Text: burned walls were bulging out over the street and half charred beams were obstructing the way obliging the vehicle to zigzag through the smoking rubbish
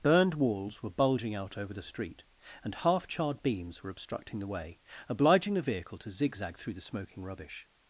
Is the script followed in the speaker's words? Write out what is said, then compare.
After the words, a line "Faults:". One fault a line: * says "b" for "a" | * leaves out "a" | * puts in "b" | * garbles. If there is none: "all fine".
burned walls were bulging out over the street and half charred beams were obstructing the way obliging the vehicle to zigzag through the smoking rubbish
Faults:
all fine